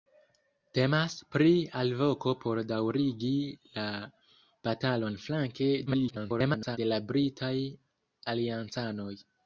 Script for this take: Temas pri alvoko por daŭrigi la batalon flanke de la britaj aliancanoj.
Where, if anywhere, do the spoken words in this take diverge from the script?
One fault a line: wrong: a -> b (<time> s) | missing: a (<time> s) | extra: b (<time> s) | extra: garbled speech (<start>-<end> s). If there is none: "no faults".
extra: garbled speech (5.9-6.8 s)